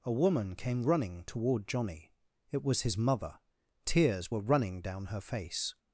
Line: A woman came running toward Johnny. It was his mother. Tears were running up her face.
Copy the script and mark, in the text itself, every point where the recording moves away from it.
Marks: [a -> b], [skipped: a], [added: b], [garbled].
A woman came running toward Johnny. It was his mother. Tears were running [up -> down] her face.